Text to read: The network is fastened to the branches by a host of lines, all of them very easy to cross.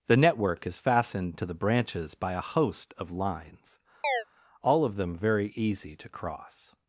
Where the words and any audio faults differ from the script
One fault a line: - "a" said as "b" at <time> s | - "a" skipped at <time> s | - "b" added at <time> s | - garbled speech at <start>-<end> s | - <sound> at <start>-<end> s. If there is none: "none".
- chirp at 4.0-4.2 s